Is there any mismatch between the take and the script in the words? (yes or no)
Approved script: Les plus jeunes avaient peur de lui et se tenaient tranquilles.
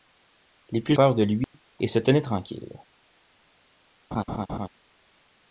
yes